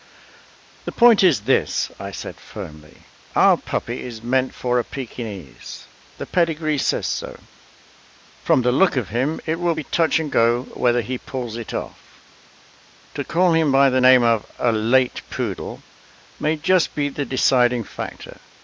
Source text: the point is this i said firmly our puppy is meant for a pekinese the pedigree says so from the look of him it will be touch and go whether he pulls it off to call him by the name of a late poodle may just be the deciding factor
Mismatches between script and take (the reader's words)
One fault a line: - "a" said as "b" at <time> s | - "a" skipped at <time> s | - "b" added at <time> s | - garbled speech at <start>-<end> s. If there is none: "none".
none